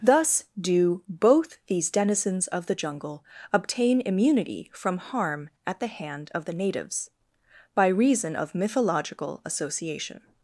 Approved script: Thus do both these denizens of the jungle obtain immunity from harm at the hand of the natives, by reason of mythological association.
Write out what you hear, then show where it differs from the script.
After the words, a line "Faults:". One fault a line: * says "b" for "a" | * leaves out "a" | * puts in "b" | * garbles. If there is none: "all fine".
Thus do both these denizens of the jungle obtain immunity from harm at the hand of the natives, by reason of mythological association.
Faults:
all fine